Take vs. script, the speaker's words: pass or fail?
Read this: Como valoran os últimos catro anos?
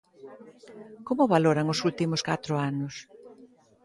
pass